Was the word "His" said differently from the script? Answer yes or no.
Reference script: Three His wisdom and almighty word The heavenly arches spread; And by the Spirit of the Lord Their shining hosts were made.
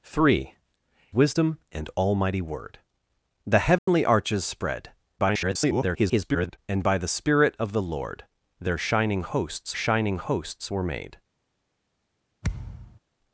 yes